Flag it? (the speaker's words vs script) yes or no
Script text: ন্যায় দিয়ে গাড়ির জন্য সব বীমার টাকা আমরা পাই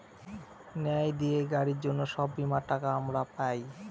no